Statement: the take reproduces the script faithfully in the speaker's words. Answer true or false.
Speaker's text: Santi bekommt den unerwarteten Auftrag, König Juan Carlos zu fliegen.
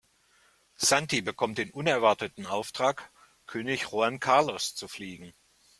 true